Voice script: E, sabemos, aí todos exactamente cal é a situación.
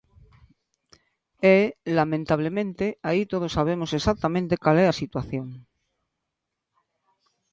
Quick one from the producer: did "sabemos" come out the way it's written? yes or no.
no